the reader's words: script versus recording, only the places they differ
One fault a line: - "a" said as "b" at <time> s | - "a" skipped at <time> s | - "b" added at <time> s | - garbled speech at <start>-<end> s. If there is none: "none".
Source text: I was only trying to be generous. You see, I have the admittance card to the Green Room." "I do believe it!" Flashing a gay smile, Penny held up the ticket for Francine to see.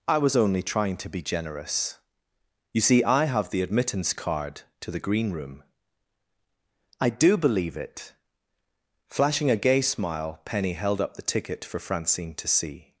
none